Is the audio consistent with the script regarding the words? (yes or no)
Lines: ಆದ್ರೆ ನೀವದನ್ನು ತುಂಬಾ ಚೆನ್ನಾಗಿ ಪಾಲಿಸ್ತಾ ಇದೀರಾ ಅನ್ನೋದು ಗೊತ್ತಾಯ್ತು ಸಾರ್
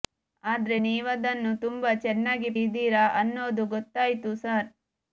no